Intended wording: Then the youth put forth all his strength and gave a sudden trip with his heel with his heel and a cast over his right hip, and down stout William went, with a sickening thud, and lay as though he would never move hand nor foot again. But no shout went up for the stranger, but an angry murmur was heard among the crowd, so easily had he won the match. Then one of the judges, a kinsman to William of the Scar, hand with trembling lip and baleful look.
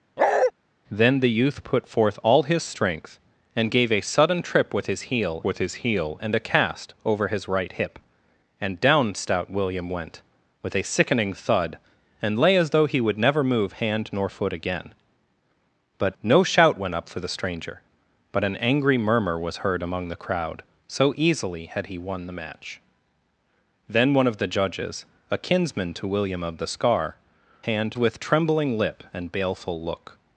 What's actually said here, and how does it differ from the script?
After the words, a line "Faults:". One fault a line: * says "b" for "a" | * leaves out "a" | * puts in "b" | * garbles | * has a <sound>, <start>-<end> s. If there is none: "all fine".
Then the youth put forth all his strength and gave a sudden trip with his heel with his heel and a cast over his right hip, and down stout William went, with a sickening thud, and lay as though he would never move hand nor foot again. But no shout went up for the stranger, but an angry murmur was heard among the crowd, so easily had he won the match. Then one of the judges, a kinsman to William of the Scar, hand with trembling lip and baleful look.
Faults:
* has a bark, 0.2-0.5 s